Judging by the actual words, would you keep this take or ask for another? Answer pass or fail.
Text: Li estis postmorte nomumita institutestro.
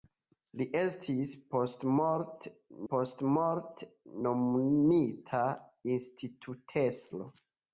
fail